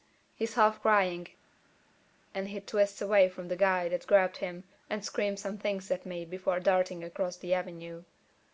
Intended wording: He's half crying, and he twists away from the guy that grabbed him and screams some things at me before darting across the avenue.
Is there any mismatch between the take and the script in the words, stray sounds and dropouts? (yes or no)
no